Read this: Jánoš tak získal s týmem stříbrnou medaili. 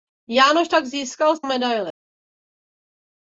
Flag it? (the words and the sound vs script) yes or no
yes